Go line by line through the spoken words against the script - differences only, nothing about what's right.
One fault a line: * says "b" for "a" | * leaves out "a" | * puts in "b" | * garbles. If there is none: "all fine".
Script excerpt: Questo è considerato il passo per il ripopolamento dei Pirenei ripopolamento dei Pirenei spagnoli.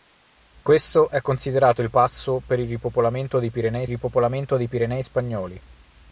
all fine